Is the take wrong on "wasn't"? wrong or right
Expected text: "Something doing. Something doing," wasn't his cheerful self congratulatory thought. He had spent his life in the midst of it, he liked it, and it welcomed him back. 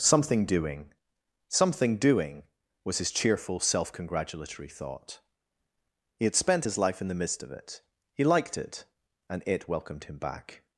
wrong